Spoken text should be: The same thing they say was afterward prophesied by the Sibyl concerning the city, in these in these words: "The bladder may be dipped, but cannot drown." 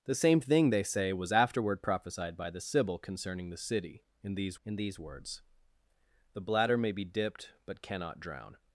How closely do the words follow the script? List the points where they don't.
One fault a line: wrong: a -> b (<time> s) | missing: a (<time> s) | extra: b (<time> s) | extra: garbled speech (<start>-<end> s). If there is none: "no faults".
no faults